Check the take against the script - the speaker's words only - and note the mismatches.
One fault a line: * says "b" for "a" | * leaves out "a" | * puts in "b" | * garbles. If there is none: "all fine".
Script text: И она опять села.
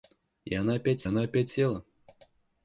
* puts in "она опять"